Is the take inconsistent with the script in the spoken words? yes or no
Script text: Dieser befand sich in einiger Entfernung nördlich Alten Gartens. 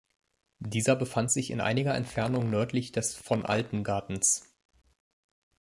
yes